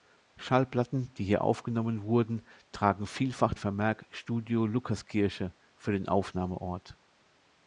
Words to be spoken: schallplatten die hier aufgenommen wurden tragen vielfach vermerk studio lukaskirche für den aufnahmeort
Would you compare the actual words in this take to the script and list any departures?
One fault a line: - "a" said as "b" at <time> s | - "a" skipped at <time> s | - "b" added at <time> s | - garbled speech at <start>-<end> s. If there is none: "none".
none